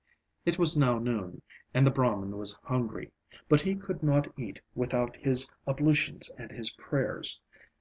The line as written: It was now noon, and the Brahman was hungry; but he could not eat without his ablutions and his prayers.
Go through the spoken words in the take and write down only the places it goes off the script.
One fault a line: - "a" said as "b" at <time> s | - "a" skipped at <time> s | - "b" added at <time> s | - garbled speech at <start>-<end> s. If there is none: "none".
none